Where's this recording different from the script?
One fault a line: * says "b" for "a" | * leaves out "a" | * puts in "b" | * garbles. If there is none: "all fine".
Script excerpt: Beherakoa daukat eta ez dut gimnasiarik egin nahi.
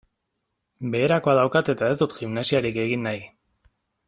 all fine